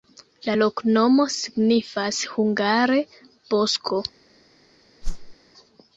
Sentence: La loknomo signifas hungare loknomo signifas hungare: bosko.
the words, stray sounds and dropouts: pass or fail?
fail